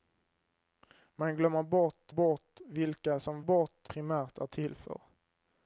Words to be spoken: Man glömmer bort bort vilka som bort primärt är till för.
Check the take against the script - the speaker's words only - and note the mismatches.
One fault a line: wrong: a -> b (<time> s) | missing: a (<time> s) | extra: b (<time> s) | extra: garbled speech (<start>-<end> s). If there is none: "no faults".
no faults